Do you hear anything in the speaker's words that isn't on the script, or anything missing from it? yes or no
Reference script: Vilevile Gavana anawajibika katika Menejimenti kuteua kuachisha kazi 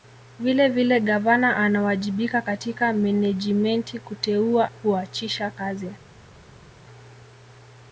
no